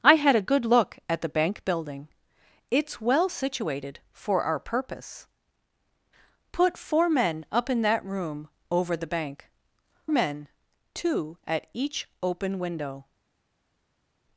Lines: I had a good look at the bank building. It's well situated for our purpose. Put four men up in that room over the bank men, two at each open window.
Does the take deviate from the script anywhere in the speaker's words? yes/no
no